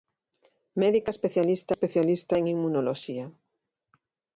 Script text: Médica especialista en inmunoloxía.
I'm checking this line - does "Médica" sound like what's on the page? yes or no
yes